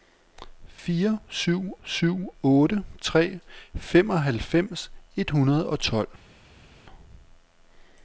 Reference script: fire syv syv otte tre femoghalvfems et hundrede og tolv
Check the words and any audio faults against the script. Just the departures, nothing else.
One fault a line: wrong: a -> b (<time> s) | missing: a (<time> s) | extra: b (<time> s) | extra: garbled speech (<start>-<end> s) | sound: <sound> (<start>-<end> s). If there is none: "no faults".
no faults